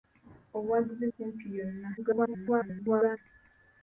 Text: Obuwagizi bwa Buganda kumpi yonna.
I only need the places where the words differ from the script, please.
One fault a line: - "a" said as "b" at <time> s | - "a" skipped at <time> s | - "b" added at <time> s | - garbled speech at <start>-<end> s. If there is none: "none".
- "bwa Buganda" skipped at 1.1 s
- garbled speech at 2.0-3.2 s